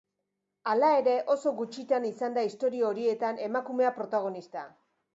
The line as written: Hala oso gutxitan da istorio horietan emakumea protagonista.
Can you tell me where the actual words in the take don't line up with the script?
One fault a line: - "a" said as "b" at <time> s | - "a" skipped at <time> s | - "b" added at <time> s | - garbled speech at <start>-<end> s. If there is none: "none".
- "ere" added at 1.0 s
- "izan" added at 2.1 s